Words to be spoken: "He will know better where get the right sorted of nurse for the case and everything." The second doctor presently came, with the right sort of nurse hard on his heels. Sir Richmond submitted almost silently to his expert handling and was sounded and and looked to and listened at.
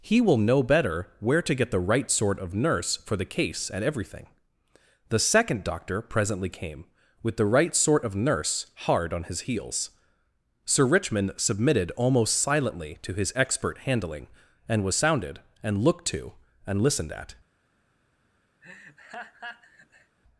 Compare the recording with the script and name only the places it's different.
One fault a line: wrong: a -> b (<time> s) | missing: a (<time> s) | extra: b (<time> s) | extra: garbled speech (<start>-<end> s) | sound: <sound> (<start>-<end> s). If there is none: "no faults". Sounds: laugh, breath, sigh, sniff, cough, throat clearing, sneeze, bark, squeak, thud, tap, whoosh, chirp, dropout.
extra: to (1.4 s)
wrong: sorted -> sort (2.1 s)
missing: and (15.8 s)
sound: laugh (18.6-20.2 s)